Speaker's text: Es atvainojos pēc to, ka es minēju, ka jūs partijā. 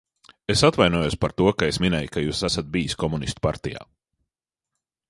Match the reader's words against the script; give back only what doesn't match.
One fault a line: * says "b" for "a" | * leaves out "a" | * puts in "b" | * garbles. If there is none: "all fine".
* says "par" for "pēc"
* puts in "esat bijis komunistu"